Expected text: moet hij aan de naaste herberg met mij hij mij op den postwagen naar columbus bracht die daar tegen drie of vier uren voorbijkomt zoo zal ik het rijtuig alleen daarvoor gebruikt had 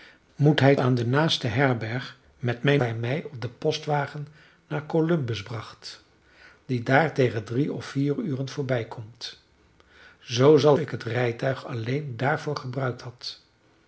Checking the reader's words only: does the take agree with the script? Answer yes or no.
yes